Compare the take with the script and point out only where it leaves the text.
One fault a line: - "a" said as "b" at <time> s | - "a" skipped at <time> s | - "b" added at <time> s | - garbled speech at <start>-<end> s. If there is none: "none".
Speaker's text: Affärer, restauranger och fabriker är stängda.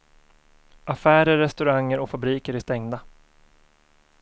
none